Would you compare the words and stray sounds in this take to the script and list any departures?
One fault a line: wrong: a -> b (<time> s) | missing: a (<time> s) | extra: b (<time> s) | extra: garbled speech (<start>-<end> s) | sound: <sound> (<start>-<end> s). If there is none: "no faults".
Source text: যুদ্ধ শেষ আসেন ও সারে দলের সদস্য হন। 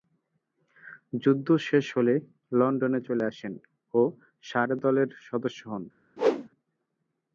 extra: হলে লন্ডনে চলে (2.0 s)
sound: whoosh (6.2-6.5 s)